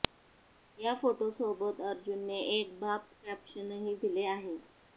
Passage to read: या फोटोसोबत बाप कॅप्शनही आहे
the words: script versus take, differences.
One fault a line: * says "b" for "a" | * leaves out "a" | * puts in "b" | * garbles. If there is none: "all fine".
* puts in "अर्जुनने एक"
* puts in "दिले"